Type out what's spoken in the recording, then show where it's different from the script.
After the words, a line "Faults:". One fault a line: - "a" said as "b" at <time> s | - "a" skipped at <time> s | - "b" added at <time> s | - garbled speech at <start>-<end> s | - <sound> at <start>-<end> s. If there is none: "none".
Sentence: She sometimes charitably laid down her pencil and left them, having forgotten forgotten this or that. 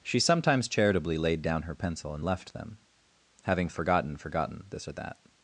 She sometimes charitably laid down her pencil and left them, having forgotten forgotten this or that.
Faults:
none